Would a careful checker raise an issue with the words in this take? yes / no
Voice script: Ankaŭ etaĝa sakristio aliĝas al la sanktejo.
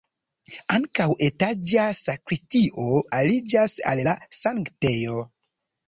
no